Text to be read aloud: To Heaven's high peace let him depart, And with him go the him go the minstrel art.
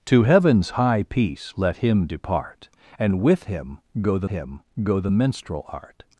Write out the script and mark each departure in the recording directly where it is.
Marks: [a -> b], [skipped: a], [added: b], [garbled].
To Heaven's high peace let him depart, And with him go the him go the minstrel art.